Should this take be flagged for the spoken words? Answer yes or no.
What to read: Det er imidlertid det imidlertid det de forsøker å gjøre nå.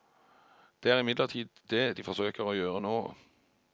yes